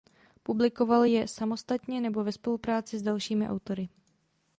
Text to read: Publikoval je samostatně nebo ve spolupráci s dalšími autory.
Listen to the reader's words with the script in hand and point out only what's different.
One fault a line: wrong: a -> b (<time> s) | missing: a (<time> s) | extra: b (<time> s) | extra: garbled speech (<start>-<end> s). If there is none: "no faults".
no faults